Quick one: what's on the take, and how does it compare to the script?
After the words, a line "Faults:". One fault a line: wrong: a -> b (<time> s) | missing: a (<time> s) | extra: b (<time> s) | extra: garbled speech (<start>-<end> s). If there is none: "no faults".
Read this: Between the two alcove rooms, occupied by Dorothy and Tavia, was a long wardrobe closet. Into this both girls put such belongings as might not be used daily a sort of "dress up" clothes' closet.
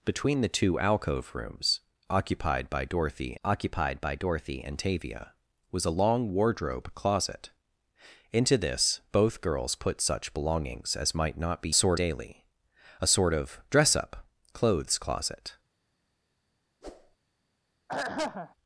Between the two alcove rooms, occupied by Dorothy occupied by Dorothy and Tavia, was a long wardrobe closet. Into this both girls put such belongings as might not be sort daily a sort of "dress up" clothes' closet.
Faults:
extra: occupied by Dorothy (3.4 s)
wrong: used -> sort (11.7 s)